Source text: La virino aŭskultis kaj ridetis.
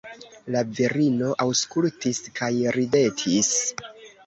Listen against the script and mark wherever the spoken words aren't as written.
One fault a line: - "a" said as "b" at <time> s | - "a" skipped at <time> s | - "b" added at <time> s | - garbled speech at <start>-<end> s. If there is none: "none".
none